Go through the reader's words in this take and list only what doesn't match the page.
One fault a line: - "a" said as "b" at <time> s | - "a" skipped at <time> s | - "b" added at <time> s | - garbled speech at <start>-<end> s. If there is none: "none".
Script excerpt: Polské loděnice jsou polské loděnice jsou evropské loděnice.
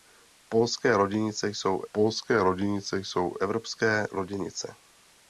none